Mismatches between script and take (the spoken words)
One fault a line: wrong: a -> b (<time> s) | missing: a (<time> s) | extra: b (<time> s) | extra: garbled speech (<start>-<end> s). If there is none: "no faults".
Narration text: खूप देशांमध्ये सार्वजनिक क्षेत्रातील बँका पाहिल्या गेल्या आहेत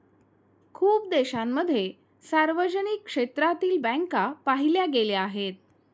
no faults